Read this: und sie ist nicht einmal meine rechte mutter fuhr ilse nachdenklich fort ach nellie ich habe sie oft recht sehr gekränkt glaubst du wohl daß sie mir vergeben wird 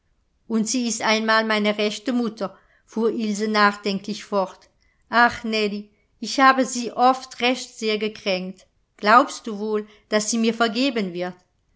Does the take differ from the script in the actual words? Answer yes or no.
yes